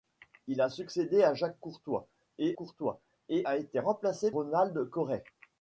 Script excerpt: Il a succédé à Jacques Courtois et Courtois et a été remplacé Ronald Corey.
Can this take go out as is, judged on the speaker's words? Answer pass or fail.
pass